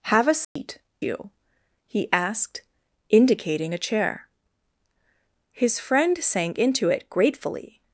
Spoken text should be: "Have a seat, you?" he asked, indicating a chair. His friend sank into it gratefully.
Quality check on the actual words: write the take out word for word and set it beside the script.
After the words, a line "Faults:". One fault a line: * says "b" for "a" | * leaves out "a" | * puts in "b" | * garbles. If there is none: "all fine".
"Have a seat, you?" he asked, indicating a chair. His friend sank into it gratefully.
Faults:
all fine